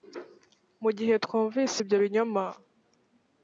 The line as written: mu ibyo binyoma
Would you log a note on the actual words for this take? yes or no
yes